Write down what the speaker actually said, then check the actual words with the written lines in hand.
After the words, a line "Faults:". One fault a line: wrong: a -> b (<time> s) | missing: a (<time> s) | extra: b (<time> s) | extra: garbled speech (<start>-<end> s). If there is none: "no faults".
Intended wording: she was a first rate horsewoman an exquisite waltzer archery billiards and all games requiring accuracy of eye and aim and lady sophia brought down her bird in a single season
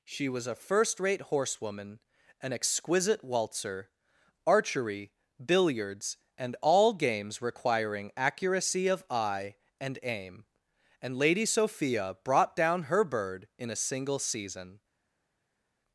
she was a first rate horsewoman an exquisite waltzer archery billiards and all games requiring accuracy of eye and aim and lady sophia brought down her bird in a single season
Faults:
no faults